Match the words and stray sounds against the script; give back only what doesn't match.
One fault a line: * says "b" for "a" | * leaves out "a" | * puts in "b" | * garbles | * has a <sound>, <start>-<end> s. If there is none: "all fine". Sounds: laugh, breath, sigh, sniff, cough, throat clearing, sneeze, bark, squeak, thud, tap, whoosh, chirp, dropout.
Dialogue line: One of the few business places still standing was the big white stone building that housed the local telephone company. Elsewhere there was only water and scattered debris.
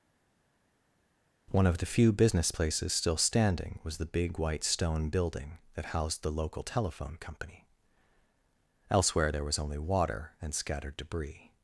all fine